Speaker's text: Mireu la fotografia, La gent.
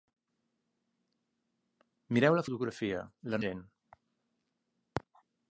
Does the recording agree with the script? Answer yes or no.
yes